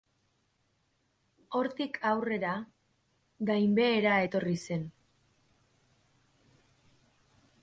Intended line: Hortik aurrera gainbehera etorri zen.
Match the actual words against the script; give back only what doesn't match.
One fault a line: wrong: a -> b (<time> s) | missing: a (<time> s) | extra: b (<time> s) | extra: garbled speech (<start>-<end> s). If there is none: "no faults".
no faults